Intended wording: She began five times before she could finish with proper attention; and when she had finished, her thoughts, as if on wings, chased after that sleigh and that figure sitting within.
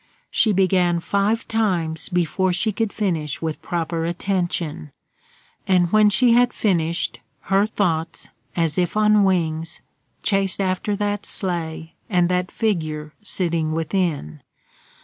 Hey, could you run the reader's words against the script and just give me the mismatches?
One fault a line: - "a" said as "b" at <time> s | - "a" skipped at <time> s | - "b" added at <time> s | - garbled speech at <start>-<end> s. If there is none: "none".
none